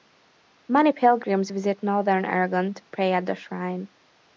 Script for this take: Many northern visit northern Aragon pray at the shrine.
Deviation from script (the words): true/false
true